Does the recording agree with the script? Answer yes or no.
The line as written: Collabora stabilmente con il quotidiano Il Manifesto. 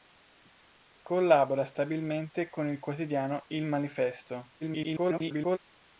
no